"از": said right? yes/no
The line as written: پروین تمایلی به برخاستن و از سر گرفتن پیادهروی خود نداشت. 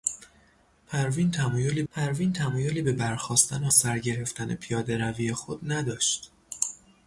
no